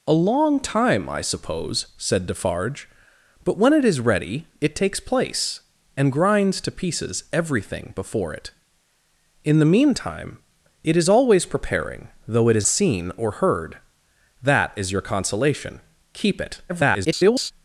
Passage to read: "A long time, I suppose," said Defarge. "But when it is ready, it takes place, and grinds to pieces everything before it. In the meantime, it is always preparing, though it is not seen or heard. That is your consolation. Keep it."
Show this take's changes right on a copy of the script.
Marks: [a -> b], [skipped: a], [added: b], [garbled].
"A long time, I suppose," said Defarge. "But when it is ready, it takes place, and grinds to pieces everything before it. In the meantime, it is always preparing, though it is [skipped: not] seen or heard. That is your consolation. Keep it." [garbled]